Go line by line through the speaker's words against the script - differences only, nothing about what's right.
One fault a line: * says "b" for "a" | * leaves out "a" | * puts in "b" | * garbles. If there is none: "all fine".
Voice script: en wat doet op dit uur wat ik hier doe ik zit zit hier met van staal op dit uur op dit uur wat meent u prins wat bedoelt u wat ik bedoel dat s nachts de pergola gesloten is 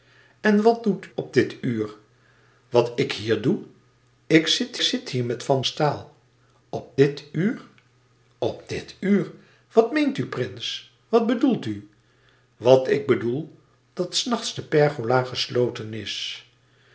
all fine